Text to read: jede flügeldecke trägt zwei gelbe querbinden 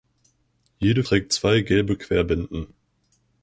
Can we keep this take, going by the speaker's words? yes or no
no